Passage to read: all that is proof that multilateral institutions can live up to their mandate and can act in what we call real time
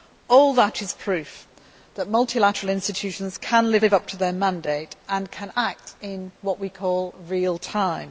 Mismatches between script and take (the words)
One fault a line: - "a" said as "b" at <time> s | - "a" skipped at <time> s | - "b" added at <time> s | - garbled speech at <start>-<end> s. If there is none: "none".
- "live" added at 3.8 s